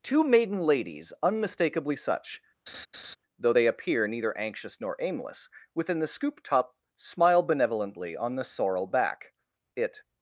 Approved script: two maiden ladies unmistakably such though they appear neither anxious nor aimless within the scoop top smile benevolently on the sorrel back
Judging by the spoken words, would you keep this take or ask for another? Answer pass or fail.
fail